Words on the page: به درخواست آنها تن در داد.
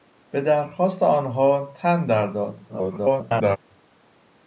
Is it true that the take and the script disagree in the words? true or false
true